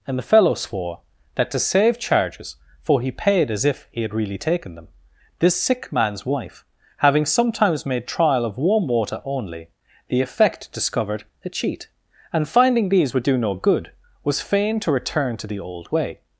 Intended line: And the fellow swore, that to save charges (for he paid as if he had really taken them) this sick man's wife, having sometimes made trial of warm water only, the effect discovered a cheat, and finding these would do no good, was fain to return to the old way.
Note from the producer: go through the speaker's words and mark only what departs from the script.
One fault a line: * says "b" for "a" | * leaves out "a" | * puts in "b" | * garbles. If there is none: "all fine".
all fine